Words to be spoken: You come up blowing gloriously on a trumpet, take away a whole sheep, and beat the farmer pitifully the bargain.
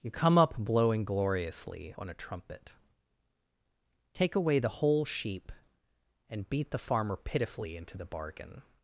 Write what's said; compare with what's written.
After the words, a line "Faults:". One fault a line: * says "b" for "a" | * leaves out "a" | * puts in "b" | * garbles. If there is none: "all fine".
You come up blowing gloriously on a trumpet, take away the whole sheep, and beat the farmer pitifully into the bargain.
Faults:
* says "the" for "a"
* puts in "into"